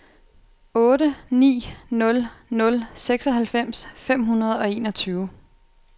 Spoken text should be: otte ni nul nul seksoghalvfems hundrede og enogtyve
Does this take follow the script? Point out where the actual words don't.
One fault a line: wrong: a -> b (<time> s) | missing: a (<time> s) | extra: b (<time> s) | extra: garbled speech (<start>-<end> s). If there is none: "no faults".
extra: fem (4.0 s)